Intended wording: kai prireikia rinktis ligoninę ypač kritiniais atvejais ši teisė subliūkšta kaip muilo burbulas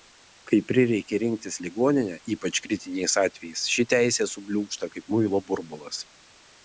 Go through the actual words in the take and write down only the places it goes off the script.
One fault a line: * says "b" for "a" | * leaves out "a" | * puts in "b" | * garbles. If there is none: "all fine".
all fine